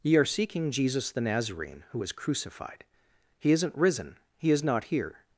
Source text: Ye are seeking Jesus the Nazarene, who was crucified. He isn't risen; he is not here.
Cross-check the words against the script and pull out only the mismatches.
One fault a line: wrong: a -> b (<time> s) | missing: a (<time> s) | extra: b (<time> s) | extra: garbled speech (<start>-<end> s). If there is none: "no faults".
no faults